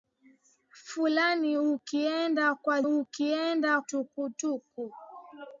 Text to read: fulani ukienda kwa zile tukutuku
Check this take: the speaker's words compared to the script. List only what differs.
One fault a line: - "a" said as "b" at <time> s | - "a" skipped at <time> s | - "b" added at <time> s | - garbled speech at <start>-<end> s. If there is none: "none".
- "zile" said as "ukienda" at 2.8 s